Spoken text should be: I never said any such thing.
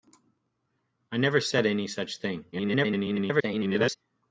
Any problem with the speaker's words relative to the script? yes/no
yes